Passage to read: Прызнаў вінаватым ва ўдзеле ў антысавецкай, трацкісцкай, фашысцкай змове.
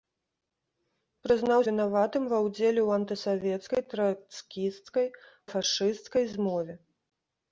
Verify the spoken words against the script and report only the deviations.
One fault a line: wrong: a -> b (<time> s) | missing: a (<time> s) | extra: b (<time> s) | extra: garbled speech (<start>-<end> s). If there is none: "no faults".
no faults